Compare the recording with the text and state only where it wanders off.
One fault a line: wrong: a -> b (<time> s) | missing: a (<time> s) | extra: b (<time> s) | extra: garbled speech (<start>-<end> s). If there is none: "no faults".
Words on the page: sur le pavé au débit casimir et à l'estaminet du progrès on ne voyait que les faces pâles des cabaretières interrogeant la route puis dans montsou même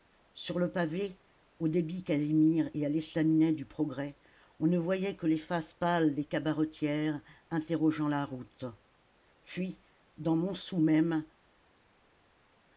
no faults